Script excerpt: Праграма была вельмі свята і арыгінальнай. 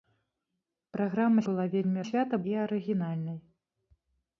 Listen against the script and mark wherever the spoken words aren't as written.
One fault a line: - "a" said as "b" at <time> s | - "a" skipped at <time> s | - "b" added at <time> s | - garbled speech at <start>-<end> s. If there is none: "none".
none